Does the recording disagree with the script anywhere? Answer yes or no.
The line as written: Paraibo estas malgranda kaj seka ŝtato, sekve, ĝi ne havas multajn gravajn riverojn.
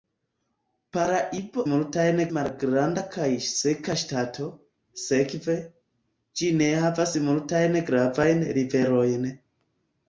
yes